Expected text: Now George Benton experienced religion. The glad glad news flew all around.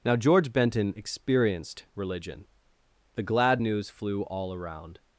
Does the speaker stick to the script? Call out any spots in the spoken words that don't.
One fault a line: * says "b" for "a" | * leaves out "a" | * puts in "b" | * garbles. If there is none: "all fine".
* leaves out "glad"